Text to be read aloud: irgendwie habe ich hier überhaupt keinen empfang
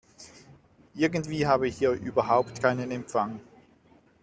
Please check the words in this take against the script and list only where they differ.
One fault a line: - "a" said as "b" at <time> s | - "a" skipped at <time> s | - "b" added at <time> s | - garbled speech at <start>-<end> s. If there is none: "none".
none